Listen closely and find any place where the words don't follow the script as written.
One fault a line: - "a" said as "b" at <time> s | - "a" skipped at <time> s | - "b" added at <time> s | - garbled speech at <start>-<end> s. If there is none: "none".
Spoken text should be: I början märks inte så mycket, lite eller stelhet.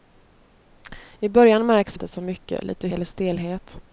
none